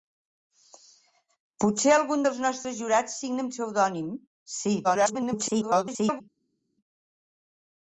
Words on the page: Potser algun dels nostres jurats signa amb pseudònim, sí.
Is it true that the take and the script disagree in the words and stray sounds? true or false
true